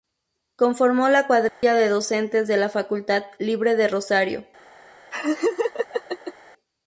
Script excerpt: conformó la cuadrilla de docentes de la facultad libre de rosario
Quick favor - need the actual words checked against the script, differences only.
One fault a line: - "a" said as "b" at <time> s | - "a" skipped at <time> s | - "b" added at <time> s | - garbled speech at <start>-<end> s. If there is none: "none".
none